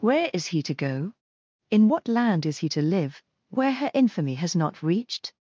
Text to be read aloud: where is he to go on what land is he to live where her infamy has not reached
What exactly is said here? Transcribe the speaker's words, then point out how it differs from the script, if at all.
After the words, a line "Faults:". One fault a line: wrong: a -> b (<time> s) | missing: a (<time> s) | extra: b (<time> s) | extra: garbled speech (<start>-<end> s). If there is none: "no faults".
where is he to go in what land is he to live where her infamy has not reached
Faults:
wrong: on -> in (1.7 s)